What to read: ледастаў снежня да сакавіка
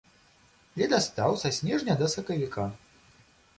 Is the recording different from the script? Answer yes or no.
yes